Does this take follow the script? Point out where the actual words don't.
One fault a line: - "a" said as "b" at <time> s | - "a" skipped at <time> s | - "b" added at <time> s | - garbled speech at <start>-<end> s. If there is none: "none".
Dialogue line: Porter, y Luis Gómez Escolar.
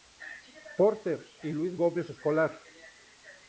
none